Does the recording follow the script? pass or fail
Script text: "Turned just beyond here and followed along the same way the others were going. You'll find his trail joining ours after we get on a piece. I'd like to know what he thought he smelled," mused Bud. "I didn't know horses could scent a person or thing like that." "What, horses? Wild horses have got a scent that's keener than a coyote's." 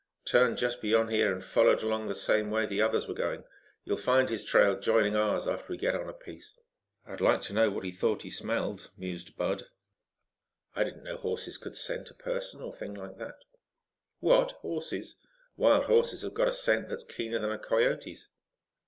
pass